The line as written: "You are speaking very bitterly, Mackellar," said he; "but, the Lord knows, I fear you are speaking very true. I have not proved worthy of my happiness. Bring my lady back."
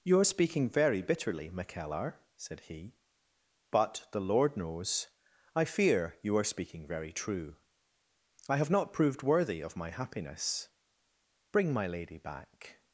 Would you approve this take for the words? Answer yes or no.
yes